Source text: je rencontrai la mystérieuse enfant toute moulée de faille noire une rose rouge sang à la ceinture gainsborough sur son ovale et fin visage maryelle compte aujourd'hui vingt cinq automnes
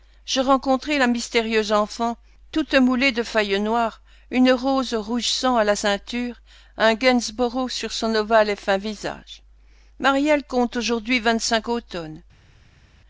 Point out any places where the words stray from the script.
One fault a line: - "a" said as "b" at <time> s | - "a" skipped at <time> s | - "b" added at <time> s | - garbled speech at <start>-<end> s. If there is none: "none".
- "un" added at 6.8 s